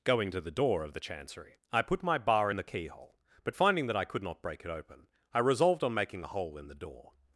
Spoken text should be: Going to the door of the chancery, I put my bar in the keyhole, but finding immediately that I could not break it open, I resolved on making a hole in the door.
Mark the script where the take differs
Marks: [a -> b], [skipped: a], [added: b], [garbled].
Going to the door of the chancery, I put my bar in the keyhole, but finding [skipped: immediately] that I could not break it open, I resolved on making a hole in the door.